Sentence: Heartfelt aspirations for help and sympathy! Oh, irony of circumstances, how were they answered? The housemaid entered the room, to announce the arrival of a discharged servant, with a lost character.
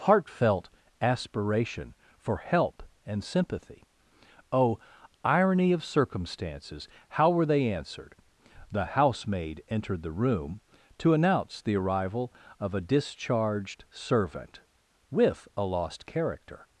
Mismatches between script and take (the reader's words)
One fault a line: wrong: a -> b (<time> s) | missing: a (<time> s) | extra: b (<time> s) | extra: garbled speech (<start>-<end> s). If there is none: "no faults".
wrong: aspirations -> aspiration (1.0 s)